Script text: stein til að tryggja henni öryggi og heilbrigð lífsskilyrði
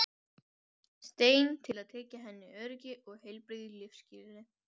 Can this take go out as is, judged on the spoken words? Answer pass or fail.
pass